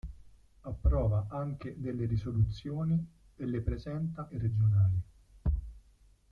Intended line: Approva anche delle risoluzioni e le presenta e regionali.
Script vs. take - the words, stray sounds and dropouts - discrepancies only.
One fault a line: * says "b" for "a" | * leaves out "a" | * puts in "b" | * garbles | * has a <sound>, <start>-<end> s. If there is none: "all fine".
all fine